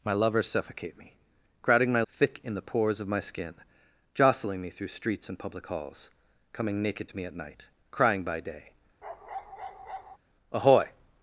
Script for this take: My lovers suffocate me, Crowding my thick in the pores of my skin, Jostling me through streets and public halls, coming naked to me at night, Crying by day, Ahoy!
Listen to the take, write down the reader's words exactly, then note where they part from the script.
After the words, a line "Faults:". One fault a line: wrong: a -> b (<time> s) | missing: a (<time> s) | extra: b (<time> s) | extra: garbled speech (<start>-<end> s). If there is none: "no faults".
My lovers suffocate me, Crowding my thick in the pores of my skin, Jostling me through streets and public halls, coming naked to me at night, Crying by day, Ahoy!
Faults:
no faults